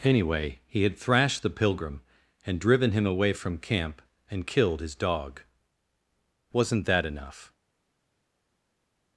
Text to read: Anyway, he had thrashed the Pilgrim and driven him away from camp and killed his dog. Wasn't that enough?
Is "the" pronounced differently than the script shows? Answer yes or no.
no